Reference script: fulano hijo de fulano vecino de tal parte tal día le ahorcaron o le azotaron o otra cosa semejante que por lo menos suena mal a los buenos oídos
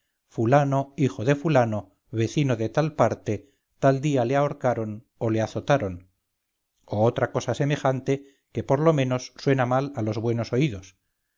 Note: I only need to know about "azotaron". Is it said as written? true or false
true